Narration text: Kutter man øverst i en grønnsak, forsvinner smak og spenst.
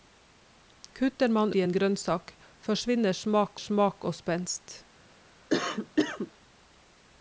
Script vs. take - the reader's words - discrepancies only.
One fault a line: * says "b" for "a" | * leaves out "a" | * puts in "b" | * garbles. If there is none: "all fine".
* leaves out "øverst"
* puts in "smak"